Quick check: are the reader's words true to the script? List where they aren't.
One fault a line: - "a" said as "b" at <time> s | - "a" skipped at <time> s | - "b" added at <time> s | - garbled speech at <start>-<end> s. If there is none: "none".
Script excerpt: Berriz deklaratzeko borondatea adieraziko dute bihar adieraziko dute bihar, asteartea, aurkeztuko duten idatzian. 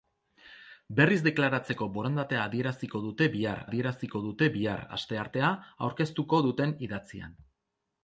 none